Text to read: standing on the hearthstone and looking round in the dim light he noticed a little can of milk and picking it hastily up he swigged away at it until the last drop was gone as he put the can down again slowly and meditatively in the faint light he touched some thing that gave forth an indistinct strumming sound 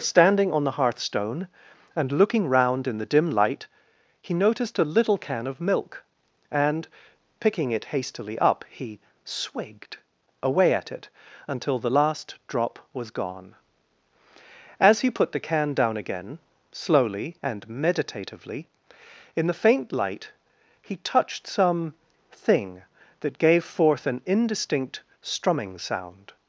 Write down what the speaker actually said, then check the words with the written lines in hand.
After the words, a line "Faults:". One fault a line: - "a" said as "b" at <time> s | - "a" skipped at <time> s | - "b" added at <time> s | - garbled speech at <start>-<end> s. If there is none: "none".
standing on the hearthstone and looking round in the dim light he noticed a little can of milk and picking it hastily up he swigged away at it until the last drop was gone as he put the can down again slowly and meditatively in the faint light he touched some thing that gave forth an indistinct strumming sound
Faults:
none